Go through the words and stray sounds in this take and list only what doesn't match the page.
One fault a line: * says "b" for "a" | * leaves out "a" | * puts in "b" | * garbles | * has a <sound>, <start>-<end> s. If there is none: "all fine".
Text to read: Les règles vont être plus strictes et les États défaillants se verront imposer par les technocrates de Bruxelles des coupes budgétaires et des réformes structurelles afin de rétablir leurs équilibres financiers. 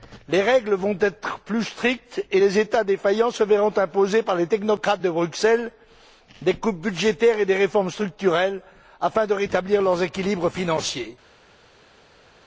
all fine